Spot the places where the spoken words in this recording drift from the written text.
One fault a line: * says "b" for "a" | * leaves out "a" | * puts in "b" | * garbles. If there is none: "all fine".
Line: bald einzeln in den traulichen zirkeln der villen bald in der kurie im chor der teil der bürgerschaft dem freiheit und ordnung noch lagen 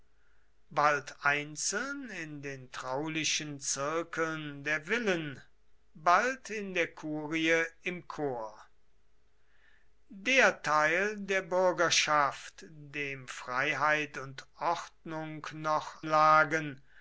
all fine